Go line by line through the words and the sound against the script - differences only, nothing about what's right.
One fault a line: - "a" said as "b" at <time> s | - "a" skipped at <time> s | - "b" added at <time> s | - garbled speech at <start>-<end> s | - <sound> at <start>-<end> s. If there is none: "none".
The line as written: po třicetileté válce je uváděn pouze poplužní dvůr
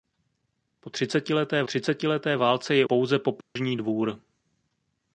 - "třicetileté" added at 1.6 s
- "uváděn" skipped at 2.9 s
- dropout at 3.4-3.6 s